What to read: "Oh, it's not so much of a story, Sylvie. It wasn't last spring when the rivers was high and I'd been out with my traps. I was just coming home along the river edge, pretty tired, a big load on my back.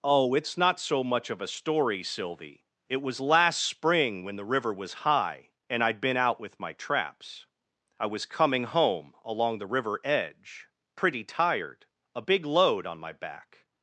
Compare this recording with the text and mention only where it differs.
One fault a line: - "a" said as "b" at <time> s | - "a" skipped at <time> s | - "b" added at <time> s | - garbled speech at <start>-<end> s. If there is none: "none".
- "wasn't" said as "was" at 3.0 s
- "rivers" said as "river" at 4.5 s
- "just" skipped at 8.2 s